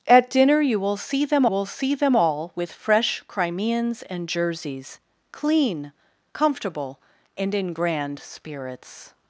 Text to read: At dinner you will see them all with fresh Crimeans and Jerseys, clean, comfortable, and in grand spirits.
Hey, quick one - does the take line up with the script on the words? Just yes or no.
no